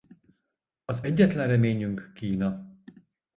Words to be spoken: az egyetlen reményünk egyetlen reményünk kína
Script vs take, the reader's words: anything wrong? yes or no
yes